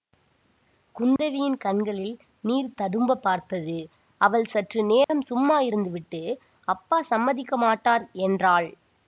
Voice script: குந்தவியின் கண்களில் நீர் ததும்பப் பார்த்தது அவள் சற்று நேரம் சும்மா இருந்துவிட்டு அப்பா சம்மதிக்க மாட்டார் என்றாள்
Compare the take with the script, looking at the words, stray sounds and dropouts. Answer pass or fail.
fail